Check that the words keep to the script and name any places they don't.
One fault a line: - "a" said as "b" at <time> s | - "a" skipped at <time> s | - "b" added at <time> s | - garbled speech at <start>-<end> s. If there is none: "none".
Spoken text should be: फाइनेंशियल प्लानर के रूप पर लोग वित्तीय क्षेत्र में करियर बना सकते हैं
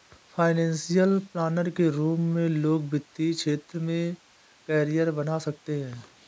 - "पर" said as "में" at 2.3 s